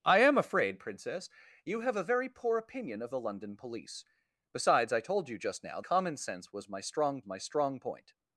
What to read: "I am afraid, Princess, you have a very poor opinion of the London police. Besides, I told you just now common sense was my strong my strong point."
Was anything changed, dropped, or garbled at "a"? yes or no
no